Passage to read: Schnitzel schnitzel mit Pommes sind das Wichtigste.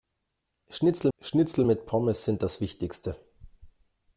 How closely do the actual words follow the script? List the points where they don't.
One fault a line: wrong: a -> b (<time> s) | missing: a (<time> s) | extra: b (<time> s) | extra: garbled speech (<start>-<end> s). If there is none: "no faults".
no faults